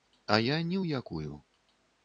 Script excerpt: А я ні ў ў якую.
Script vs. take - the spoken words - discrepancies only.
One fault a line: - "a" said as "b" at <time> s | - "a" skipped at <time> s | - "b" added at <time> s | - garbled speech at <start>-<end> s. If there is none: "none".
- "ў" skipped at 1.0 s